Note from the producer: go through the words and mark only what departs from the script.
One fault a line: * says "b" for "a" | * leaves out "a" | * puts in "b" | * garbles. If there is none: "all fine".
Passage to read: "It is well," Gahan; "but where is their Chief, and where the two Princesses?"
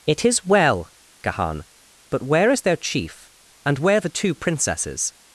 all fine